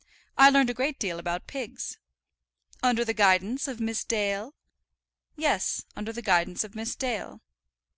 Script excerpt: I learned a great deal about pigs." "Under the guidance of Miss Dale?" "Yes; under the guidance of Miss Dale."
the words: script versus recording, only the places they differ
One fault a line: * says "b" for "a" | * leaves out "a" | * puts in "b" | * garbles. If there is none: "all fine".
all fine